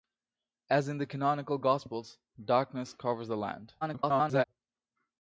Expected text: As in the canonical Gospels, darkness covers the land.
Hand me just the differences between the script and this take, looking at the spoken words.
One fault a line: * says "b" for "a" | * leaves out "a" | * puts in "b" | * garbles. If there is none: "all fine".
* garbles